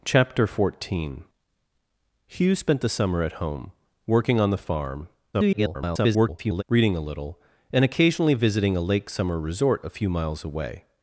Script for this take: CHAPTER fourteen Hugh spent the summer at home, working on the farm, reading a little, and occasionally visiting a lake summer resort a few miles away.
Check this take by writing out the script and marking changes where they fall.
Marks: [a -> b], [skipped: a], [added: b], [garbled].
CHAPTER fourteen Hugh spent the summer at home, working on the farm, [garbled] reading a little, and occasionally visiting a lake summer resort a few miles away.